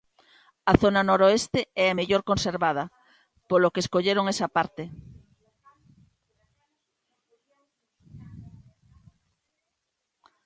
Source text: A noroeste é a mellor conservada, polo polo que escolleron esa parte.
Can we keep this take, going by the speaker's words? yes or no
no